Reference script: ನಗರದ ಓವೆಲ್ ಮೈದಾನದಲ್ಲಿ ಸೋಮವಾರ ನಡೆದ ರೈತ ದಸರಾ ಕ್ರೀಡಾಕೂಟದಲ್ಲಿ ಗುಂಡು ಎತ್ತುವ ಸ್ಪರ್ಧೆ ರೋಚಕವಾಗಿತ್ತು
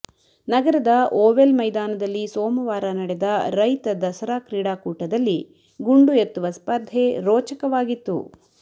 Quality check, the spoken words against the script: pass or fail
pass